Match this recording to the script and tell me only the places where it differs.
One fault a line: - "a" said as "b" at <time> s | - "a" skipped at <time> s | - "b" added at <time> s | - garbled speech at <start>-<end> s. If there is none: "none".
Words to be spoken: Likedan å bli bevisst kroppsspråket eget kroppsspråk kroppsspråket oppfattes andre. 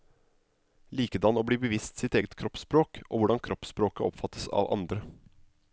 - "kroppsspråket" said as "sitt" at 2.0 s
- "og hvordan" added at 3.1 s
- "av" added at 4.6 s